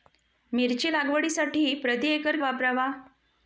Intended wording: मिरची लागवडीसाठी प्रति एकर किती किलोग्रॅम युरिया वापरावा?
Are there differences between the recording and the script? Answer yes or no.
yes